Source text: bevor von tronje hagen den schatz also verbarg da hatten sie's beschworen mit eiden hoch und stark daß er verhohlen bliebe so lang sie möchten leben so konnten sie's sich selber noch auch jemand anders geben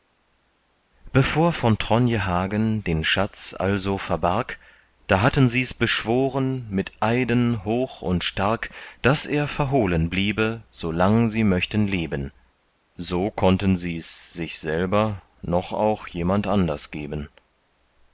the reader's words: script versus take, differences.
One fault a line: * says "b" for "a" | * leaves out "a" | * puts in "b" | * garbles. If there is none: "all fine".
all fine